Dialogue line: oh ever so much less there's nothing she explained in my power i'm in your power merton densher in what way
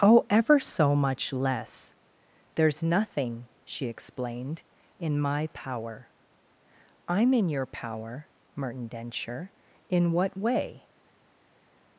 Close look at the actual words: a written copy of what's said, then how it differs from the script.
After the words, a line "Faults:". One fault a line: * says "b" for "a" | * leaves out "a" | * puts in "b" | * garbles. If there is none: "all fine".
oh ever so much less there's nothing she explained in my power i'm in your power merton densher in what way
Faults:
all fine